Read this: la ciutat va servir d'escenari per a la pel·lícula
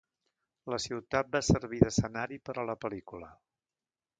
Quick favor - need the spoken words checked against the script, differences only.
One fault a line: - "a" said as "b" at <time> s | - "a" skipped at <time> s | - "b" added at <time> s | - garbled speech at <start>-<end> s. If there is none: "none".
none